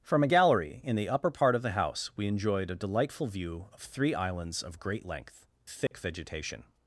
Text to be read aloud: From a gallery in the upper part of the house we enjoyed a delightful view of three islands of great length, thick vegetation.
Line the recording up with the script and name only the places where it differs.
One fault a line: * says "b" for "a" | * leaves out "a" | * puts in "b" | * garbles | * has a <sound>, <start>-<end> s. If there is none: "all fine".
* has a dropout, 5.9-5.9 s